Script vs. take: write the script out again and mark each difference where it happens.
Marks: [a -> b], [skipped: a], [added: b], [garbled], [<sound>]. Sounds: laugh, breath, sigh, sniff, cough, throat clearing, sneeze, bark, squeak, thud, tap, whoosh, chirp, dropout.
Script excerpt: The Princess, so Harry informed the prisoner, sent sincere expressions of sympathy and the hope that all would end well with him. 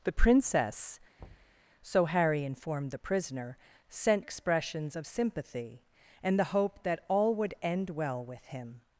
The Princess, [thud] so Harry informed the prisoner, sent [skipped: sincere] expressions of sympathy and the hope that all would end well with him.